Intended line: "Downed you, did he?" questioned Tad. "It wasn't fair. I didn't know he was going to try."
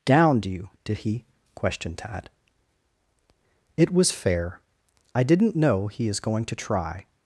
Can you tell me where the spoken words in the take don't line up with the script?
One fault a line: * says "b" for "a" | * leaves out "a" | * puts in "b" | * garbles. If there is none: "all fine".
* says "was" for "wasn't"
* says "is" for "was"